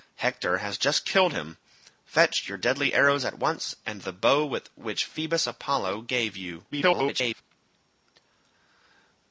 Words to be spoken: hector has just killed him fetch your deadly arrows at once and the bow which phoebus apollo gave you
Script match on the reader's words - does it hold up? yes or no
no